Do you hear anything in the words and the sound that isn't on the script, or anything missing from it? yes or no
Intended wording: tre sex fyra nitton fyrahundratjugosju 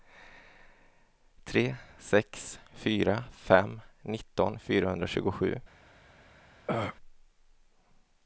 yes